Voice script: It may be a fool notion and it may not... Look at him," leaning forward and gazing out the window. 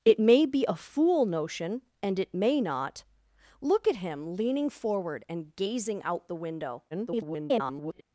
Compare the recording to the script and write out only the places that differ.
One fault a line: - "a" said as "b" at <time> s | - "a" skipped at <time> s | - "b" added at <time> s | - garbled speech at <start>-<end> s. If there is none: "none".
- garbled speech at 6.9-8.0 s